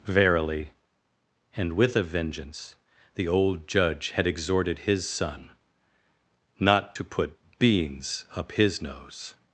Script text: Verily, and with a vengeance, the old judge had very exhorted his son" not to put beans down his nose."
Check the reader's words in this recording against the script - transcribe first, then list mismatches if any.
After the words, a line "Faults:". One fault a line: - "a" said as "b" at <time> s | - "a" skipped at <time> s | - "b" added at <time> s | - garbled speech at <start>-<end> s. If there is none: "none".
Verily, and with a vengeance, the old judge had exhorted his son" not to put beans up his nose."
Faults:
- "very" skipped at 4.3 s
- "down" said as "up" at 8.3 s